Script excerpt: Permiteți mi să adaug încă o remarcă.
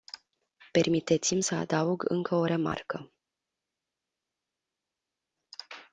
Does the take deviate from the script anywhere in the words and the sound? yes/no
no